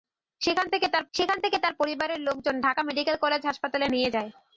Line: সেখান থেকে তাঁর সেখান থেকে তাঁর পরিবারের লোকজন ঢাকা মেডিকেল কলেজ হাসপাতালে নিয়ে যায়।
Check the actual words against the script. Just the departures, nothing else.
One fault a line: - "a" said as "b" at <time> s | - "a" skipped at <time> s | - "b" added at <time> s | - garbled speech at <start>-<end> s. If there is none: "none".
none